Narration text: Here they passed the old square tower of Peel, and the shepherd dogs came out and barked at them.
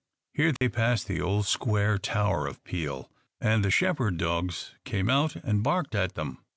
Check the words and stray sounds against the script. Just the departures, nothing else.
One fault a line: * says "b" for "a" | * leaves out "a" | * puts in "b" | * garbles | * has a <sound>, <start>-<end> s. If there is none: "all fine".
* has a dropout, 0.6-0.6 s